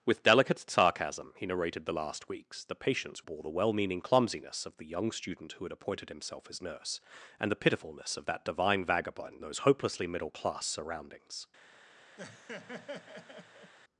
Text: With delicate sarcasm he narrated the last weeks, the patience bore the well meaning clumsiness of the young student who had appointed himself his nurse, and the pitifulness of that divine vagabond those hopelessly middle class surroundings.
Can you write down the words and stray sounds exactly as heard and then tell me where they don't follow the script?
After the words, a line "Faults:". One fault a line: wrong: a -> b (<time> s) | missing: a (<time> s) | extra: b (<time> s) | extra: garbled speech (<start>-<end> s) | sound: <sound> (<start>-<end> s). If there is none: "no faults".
With delicate sarcasm he narrated the last weeks, the patience bore the well meaning clumsiness of the young student who had appointed himself his nurse, and the pitifulness of that divine vagabond those hopelessly middle class surroundings.
Faults:
sound: laugh (12.2-13.7 s)